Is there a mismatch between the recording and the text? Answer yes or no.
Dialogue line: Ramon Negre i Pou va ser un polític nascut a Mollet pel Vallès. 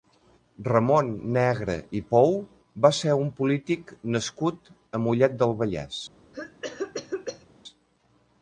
yes